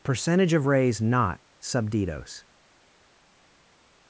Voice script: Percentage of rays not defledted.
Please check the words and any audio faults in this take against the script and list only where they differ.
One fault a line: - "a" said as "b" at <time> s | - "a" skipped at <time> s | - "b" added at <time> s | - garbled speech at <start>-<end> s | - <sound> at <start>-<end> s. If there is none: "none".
- "defledted" said as "subditos" at 1.6 s